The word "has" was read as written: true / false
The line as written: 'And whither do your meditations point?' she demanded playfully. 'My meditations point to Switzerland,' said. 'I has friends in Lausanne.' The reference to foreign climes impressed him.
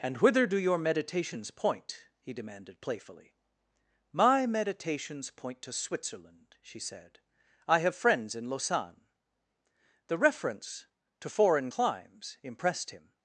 false